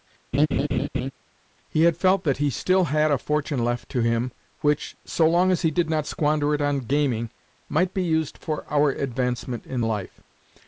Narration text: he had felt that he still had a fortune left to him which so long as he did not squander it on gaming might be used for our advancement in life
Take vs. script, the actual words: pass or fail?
pass